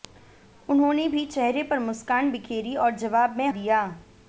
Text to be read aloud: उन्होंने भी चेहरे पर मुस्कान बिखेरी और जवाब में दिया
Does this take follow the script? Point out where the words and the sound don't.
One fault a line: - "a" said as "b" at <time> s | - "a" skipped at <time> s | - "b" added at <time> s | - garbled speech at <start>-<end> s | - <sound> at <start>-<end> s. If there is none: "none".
none